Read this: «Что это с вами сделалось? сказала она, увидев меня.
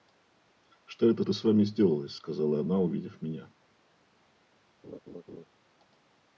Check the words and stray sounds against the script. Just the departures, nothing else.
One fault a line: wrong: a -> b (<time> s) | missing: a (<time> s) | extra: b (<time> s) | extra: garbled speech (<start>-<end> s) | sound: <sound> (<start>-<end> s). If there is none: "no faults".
extra: это (1.2 s)
sound: laugh (4.8-5.4 s)